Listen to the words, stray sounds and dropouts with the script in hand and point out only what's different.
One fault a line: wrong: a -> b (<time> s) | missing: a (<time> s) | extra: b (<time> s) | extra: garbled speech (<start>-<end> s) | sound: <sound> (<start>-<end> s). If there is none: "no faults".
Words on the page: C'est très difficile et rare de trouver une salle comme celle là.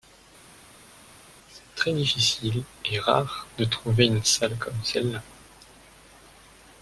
no faults